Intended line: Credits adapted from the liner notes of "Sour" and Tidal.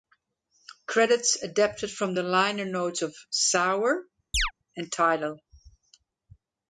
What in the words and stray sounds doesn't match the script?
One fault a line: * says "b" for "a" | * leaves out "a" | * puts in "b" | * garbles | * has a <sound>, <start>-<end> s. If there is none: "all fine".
* has a chirp, 4.3-4.5 s